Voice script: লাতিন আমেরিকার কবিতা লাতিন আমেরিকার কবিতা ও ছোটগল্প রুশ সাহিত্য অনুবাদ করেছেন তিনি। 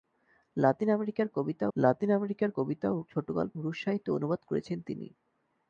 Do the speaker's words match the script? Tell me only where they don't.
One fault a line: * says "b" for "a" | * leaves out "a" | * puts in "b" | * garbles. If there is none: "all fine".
all fine